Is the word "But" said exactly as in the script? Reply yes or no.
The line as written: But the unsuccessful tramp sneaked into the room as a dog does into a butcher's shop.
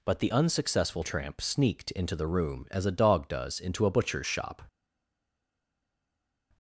yes